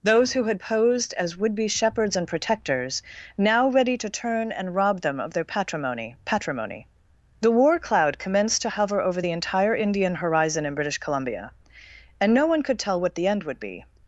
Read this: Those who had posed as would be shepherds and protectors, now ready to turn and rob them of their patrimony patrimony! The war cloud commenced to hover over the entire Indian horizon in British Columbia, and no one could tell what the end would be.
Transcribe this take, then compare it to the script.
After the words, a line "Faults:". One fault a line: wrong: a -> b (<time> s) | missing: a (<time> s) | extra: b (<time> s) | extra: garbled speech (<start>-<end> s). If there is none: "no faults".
Those who had posed as would be shepherds and protectors, now ready to turn and rob them of their patrimony patrimony! The war cloud commenced to hover over the entire Indian horizon in British Columbia, and no one could tell what the end would be.
Faults:
no faults